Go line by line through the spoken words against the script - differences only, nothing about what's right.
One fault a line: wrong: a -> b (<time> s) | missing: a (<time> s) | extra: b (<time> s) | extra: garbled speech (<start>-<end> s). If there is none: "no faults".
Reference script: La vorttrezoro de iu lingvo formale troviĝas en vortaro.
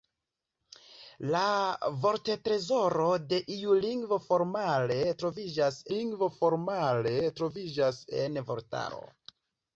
extra: lingvo formale troviĝas (5.9 s)